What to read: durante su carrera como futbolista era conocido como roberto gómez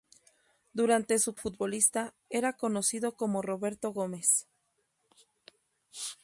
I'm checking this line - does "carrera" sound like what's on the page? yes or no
no